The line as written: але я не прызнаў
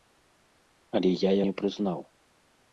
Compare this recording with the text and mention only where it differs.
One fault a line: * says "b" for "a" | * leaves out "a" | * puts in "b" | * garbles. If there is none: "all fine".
all fine